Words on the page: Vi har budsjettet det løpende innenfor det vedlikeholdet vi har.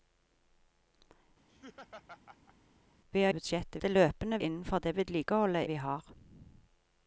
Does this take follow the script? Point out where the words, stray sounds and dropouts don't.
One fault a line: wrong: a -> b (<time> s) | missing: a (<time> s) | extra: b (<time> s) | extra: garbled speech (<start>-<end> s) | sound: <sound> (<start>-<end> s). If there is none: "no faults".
sound: laugh (1.5-2.6 s)